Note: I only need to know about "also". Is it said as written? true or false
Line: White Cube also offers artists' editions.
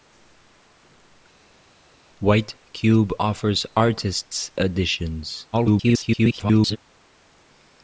false